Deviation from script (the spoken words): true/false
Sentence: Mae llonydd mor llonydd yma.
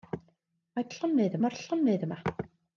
false